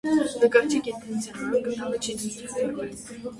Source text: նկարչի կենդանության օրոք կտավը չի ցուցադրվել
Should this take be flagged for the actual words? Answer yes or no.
no